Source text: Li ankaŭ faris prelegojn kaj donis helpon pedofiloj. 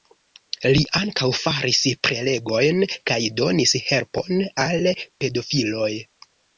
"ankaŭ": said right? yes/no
yes